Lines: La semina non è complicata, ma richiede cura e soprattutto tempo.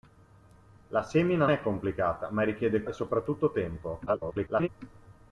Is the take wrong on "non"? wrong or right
wrong